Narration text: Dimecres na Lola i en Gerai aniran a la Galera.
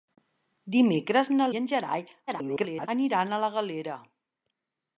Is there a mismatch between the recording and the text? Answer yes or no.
yes